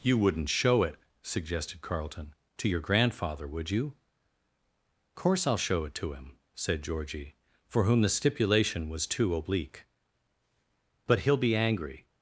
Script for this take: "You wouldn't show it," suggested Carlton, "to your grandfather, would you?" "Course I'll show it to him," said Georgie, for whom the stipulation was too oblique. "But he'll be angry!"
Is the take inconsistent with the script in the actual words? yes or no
no